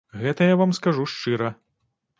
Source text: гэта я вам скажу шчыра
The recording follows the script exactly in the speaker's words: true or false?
true